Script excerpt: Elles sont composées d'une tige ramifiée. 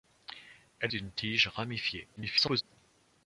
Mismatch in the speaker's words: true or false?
true